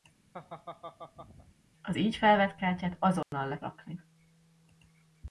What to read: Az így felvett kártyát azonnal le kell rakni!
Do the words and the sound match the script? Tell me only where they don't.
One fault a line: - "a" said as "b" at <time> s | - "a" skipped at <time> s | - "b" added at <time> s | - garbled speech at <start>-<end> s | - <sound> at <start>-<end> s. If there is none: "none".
- laugh at 0.3-1.6 s
- dropout at 3.2-3.3 s
- "kell" skipped at 3.6 s